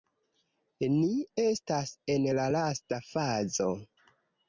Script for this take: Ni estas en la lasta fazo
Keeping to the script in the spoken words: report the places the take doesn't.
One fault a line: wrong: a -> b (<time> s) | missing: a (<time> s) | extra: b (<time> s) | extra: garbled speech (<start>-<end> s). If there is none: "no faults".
no faults